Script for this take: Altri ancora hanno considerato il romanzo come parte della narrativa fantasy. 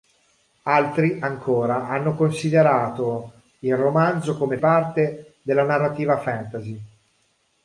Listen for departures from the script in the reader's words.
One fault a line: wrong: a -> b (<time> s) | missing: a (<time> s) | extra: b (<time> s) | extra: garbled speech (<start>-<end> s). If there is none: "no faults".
no faults